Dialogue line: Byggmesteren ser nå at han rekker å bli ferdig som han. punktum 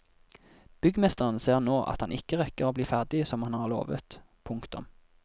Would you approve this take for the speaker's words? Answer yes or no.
no